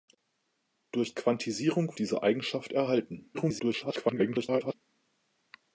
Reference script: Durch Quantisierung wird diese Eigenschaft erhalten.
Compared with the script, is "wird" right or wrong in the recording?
wrong